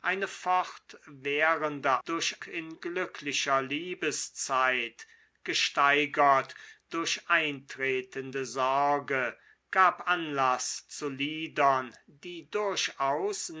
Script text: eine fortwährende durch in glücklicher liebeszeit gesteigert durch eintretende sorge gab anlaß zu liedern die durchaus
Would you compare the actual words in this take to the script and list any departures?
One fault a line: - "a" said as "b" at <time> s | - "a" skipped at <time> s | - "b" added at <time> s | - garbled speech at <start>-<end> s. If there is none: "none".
none